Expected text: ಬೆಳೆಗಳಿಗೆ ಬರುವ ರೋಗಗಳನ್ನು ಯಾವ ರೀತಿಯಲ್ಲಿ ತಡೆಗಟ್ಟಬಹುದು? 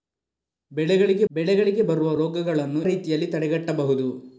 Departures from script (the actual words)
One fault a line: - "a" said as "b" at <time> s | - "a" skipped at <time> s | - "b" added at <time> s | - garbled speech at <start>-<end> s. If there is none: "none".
- "ಬೆಳೆಗಳಿಗೆ" added at 1.3 s
- "ಯಾವ" skipped at 2.8 s